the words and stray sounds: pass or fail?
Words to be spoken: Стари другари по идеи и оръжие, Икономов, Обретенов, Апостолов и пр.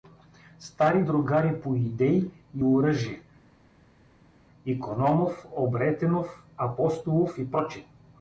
pass